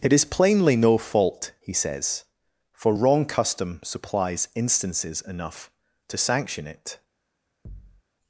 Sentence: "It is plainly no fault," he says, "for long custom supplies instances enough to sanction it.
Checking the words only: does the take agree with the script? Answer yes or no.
no